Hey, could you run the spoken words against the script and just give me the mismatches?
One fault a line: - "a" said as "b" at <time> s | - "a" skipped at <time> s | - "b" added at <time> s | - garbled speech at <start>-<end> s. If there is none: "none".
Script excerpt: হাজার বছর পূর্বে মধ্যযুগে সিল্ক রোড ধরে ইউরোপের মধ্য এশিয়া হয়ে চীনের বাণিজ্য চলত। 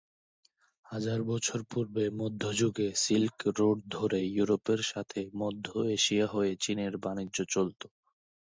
- "সাথে" added at 4.9 s